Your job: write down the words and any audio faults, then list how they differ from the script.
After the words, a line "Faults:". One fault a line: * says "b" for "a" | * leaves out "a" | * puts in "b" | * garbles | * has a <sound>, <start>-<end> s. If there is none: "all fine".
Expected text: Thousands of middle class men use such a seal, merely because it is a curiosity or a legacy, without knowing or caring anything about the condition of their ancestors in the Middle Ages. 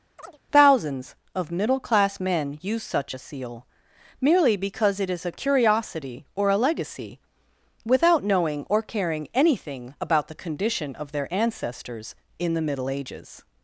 Thousands of middle class men use such a seal, merely because it is a curiosity or a legacy, without knowing or caring anything about the condition of their ancestors in the Middle Ages.
Faults:
* has a chirp, 0.2-0.4 s